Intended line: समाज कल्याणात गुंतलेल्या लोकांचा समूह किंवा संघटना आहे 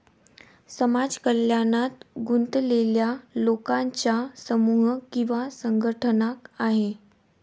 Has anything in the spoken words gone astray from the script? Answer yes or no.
no